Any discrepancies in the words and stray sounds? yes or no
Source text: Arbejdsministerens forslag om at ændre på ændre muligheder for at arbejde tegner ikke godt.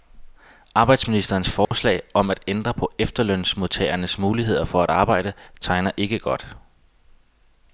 yes